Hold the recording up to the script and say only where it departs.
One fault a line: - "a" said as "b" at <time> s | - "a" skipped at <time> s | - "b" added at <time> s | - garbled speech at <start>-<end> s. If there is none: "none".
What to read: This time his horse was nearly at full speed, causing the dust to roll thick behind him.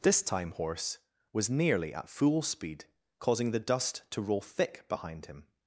- "his" skipped at 0.5 s